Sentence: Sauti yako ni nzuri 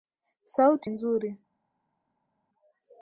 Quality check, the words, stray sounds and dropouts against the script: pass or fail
fail